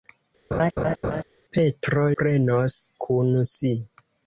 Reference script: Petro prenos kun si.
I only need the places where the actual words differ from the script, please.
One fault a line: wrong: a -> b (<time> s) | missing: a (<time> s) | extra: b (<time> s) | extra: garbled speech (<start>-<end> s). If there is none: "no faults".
no faults